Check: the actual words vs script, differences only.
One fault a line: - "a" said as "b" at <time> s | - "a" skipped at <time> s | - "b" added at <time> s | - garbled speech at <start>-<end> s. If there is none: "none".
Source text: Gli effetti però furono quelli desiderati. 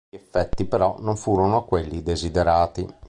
- "non" added at 1.0 s